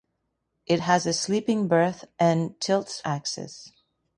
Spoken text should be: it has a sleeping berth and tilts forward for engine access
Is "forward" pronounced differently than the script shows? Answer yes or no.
yes